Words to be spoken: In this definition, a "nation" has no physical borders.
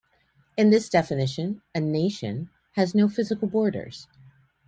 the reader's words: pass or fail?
pass